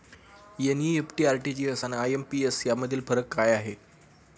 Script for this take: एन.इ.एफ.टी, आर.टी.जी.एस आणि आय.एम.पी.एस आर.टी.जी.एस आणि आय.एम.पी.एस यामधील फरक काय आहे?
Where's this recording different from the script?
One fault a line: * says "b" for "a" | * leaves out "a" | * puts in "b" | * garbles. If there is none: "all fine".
* leaves out "आर.टी.जी.एस आणि आय.एम.पी.एस"